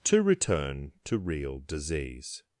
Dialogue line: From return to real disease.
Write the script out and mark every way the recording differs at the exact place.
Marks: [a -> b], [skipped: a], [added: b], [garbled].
[From -> To] return to real disease.